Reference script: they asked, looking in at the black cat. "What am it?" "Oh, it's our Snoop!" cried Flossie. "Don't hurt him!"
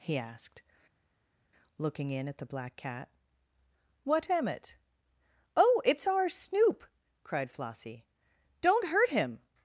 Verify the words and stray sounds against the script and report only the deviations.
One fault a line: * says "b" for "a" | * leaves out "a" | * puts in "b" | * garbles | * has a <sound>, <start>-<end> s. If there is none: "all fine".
* says "he" for "they"